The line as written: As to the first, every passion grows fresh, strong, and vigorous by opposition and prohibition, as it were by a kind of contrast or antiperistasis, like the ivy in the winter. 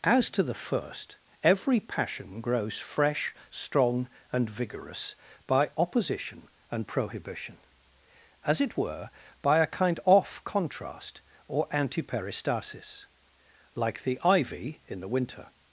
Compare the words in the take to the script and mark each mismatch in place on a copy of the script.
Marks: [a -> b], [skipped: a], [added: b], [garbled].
As to the first, every passion grows fresh, strong, and vigorous by opposition and prohibition, as it were by a kind [of -> off] contrast or antiperistasis, like the ivy in the winter.